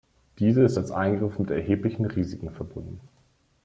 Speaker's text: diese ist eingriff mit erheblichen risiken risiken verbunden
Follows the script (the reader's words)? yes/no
no